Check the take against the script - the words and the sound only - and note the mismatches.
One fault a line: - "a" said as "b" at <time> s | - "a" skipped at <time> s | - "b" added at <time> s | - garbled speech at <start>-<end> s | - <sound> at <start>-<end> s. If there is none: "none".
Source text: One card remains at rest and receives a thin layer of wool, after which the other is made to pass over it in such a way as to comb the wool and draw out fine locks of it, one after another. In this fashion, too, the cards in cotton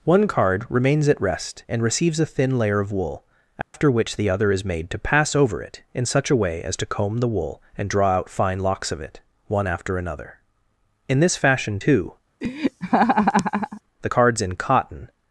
- dropout at 3.6-3.7 s
- laugh at 12.4-13.8 s